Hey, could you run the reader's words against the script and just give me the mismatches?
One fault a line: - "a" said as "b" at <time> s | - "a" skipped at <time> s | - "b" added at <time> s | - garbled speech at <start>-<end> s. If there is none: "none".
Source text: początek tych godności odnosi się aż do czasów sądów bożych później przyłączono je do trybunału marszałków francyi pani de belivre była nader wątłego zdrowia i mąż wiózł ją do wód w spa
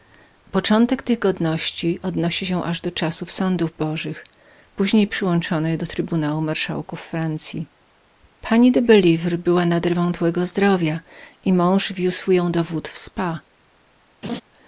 none